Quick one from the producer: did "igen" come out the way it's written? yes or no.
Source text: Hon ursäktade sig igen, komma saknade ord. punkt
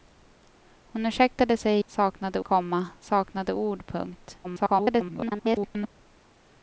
no